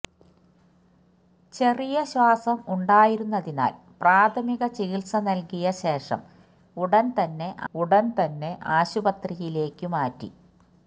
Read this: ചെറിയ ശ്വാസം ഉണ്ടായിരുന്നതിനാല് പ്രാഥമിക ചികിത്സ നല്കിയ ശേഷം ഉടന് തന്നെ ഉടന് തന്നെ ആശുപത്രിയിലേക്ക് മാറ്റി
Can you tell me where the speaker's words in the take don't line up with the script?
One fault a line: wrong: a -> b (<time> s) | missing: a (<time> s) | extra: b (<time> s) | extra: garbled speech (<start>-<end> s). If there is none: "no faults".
no faults